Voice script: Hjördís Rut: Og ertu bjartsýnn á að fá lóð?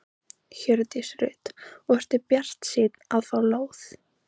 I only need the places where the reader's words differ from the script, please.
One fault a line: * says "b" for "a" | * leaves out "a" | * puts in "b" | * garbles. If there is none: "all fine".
all fine